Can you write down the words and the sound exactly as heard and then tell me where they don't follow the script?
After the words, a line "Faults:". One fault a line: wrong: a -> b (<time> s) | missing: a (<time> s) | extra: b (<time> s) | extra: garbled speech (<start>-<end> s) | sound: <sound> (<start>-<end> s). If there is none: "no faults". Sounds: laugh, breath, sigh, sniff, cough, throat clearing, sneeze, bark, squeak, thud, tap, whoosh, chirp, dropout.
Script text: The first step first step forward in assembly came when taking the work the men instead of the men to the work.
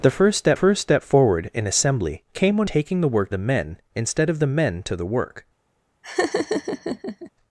The first step first step forward in assembly came when taking the work the men instead of the men to the work.
Faults:
sound: laugh (6.0-7.3 s)